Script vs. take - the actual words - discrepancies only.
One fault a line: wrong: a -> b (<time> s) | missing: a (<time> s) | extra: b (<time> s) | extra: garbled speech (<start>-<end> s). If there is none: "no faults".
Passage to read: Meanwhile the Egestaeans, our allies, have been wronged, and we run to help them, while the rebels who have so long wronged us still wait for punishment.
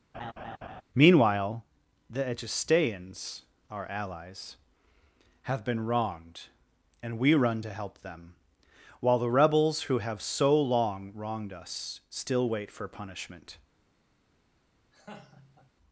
no faults